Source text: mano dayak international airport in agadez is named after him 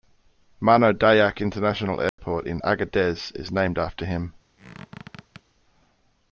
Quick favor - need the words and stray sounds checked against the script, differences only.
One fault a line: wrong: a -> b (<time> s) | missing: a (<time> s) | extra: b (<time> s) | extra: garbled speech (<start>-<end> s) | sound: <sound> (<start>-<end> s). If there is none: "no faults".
sound: dropout (2.1-2.2 s)
sound: squeak (4.6-5.4 s)